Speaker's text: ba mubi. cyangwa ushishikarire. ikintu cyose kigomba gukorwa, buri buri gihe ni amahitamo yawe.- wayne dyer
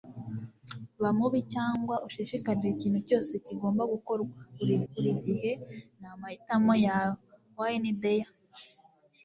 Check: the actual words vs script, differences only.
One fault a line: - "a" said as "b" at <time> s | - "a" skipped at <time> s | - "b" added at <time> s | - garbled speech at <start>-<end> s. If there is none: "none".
none